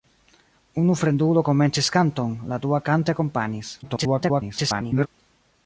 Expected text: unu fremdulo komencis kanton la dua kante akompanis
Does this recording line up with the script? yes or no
no